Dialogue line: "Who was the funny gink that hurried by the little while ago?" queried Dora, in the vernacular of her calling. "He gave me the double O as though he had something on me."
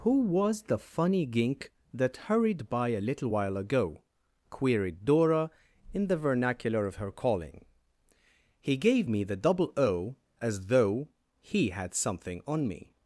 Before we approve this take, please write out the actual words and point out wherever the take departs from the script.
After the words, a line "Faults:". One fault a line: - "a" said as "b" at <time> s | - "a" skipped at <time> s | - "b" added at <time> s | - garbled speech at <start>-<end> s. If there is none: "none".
"Who was the funny gink that hurried by a little while ago?" queried Dora, in the vernacular of her calling. "He gave me the double O as though he had something on me."
Faults:
- "the" said as "a" at 2.9 s